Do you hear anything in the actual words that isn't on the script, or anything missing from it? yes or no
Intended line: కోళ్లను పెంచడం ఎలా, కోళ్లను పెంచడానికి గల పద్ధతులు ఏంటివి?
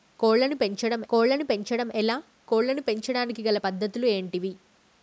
yes